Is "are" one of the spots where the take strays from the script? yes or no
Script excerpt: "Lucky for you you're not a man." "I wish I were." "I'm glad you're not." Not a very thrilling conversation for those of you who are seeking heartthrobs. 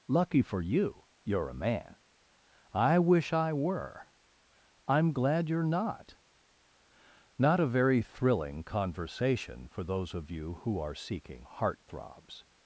no